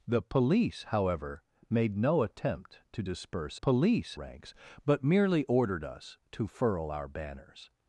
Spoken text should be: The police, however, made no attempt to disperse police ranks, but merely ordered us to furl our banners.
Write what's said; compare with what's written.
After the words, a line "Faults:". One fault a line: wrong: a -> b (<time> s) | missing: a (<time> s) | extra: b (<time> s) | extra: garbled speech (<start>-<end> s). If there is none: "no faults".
The police, however, made no attempt to disperse police ranks, but merely ordered us to furl our banners.
Faults:
no faults